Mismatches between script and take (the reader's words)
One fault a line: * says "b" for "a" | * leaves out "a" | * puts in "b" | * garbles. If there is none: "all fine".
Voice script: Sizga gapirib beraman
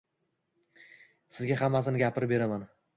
* puts in "hammasini"